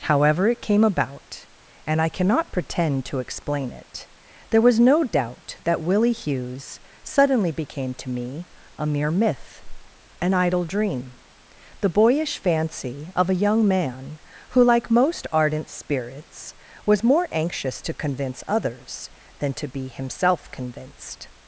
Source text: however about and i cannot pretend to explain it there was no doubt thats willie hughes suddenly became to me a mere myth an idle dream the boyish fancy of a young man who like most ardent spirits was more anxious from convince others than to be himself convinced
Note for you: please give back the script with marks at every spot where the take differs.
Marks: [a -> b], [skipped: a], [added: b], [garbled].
however [added: it came] about and i cannot pretend to explain it there was no doubt [thats -> that] willie hughes suddenly became to me a mere myth an idle dream the boyish fancy of a young man who like most ardent spirits was more anxious [from -> to] convince others than to be himself convinced